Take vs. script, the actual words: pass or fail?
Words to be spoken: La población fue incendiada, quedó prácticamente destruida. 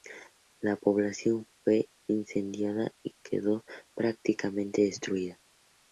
fail